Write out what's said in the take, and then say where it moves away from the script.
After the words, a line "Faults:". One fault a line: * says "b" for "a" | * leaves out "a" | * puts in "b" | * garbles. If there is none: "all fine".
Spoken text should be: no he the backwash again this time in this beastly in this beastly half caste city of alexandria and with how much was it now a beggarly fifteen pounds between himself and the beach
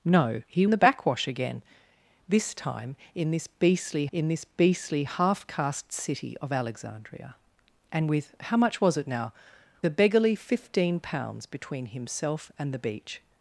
no he the backwash again this time in this beastly in this beastly half caste city of alexandria and with how much was it now a beggarly fifteen pounds between himself and the beach
Faults:
all fine